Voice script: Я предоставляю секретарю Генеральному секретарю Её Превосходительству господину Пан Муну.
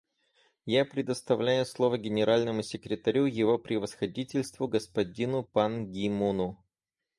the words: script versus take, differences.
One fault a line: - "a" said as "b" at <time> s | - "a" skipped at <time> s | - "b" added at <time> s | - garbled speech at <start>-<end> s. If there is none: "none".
- "секретарю" said as "слово" at 1.6 s
- "Её" said as "Его" at 3.2 s
- "Ги" added at 5.9 s